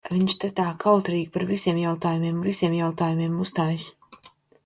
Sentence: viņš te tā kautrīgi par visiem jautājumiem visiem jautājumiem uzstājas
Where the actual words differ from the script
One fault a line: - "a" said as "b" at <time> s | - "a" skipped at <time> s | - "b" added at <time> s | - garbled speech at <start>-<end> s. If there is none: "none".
none